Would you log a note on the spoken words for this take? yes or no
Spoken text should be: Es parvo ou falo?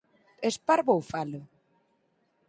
no